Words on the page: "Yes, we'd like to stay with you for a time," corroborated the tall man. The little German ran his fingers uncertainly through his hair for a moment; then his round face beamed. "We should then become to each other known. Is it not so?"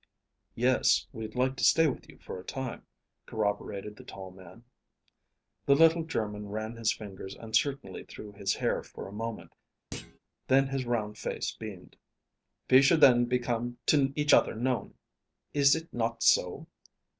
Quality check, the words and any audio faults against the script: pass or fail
fail